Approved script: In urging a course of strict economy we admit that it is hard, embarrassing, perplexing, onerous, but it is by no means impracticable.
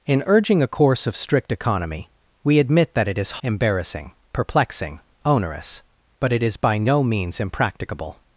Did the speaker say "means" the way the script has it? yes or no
yes